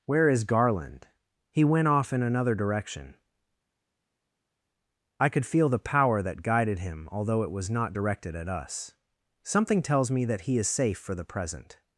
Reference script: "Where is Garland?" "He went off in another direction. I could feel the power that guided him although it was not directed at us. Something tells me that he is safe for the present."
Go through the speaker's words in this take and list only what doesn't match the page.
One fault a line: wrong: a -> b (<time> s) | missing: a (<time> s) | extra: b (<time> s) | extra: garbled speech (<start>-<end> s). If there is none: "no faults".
no faults